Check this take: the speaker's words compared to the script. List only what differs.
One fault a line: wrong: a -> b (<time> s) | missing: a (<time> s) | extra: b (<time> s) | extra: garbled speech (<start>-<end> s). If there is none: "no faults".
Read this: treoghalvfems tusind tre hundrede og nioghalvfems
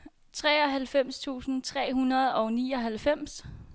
no faults